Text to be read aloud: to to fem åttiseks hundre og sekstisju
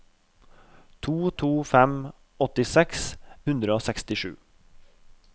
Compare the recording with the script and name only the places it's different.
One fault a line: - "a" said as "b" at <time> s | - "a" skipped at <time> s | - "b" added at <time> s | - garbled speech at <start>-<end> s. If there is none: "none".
none